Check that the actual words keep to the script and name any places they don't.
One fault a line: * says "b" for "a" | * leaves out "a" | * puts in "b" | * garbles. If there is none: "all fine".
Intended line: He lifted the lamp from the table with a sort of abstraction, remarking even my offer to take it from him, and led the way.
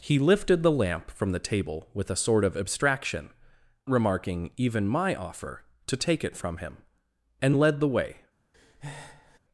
all fine